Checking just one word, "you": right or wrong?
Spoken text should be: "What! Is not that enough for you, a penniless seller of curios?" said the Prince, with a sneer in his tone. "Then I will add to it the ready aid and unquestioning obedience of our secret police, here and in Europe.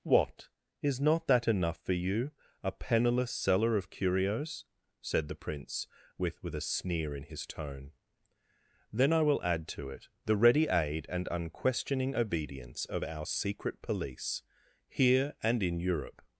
right